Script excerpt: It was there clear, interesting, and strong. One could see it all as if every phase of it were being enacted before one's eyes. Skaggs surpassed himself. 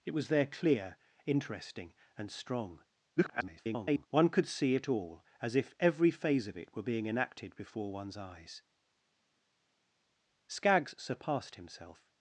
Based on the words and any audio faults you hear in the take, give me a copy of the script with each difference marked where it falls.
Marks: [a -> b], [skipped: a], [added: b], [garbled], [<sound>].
It was there clear, interesting, and strong. [garbled] One could see it all as if every phase of it were being enacted before one's eyes. Skaggs surpassed himself.